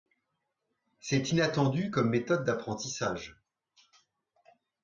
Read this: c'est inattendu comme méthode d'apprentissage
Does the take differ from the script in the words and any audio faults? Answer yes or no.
no